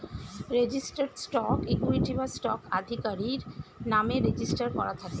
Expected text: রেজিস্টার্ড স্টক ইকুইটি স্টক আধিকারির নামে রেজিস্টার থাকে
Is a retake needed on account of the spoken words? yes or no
yes